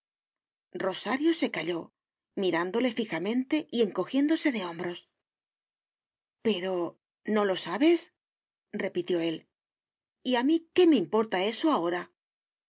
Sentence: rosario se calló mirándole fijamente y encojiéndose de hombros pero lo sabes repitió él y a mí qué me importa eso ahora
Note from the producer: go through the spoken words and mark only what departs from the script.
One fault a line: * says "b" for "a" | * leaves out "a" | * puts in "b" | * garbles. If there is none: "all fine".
* puts in "no"